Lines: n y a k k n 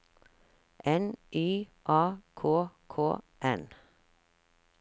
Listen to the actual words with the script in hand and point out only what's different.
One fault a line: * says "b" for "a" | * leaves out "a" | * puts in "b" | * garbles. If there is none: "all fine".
all fine